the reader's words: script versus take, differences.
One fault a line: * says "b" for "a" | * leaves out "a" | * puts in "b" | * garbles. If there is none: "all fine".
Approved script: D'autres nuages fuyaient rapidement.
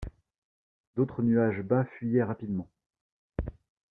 * puts in "bas"